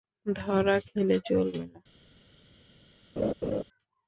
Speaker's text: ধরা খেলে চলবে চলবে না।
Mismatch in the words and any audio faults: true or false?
true